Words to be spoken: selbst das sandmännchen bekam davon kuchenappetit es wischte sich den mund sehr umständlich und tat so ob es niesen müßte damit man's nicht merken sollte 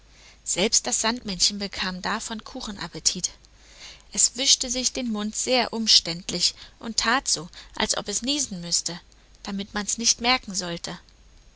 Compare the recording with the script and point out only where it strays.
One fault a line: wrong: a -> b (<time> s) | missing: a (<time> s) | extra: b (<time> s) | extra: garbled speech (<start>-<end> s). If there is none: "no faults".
extra: als (7.8 s)